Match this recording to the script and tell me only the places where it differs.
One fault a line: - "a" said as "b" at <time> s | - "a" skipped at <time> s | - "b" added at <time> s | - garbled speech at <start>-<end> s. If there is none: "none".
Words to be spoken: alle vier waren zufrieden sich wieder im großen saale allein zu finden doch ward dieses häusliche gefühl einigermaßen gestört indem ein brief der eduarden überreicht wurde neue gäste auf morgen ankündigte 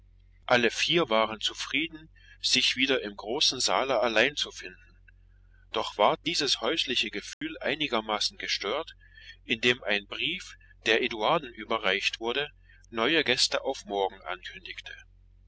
none